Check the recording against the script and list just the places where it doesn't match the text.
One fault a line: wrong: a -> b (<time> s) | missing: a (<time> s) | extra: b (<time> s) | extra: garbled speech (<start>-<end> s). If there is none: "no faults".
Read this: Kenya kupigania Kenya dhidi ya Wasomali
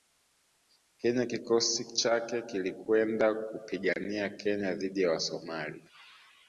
extra: kikosi chake kilikwenda (1.2 s)